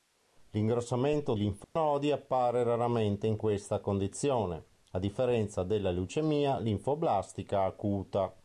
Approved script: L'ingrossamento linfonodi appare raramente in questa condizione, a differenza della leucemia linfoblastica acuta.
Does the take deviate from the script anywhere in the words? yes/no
no